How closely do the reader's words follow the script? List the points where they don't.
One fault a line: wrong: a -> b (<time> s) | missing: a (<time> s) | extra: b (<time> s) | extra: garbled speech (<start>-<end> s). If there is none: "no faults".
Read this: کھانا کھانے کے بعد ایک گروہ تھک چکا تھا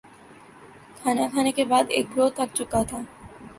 no faults